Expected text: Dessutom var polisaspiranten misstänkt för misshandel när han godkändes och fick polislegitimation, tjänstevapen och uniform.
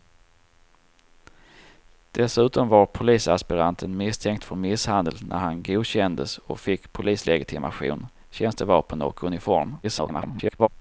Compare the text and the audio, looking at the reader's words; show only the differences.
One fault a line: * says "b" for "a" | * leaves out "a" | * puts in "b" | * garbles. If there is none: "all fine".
* garbles